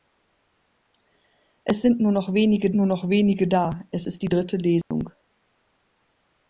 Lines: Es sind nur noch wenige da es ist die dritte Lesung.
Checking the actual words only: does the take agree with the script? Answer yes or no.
no